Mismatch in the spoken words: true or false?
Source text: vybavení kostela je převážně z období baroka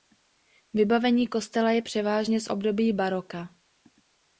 false